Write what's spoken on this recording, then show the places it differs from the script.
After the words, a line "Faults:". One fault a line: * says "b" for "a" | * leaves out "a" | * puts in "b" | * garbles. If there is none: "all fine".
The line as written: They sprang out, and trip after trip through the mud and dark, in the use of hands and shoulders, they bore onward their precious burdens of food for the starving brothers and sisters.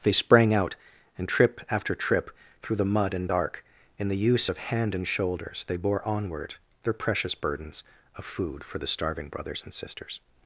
They sprang out, and trip after trip through the mud and dark, in the use of hand and shoulders, they bore onward their precious burdens of food for the starving brothers and sisters.
Faults:
* says "hand" for "hands"